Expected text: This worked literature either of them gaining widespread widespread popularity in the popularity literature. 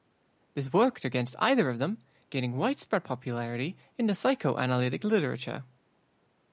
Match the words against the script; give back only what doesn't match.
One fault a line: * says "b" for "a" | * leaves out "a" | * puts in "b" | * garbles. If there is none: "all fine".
* says "against" for "literature"
* leaves out "widespread"
* says "psychoanalytic" for "popularity"